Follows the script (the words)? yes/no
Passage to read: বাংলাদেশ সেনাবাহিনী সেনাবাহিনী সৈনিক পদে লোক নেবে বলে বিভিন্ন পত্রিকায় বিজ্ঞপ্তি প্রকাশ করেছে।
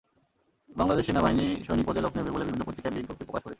no